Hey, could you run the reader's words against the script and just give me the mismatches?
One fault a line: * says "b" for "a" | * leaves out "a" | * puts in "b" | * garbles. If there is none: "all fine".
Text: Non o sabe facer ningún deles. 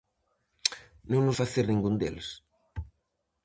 * leaves out "sabe"